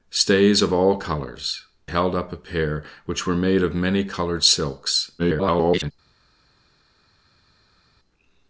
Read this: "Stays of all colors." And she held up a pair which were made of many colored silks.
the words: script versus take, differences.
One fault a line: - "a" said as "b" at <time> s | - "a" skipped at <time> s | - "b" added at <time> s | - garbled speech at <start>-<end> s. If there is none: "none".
- "And she" skipped at 1.6 s
- garbled speech at 5.2-5.9 s